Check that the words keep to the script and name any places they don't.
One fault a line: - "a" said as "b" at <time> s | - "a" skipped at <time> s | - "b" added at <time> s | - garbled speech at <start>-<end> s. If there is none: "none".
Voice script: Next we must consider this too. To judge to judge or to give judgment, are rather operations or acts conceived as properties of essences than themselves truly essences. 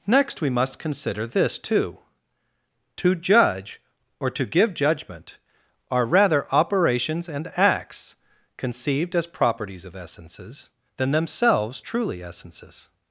- "to judge" skipped at 3.8 s
- "or" said as "and" at 7.3 s